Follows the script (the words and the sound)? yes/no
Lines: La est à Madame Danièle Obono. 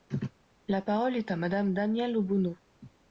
no